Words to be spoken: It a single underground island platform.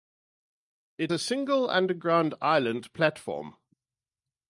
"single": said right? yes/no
yes